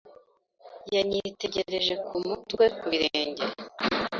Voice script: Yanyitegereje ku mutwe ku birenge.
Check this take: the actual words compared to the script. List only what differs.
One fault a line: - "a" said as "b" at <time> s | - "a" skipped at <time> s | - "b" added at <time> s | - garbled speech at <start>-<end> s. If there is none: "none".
none